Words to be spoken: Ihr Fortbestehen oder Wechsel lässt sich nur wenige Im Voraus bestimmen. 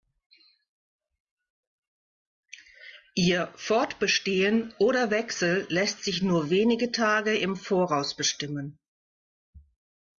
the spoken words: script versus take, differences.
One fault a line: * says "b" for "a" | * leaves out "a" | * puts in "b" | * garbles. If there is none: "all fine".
* puts in "Tage"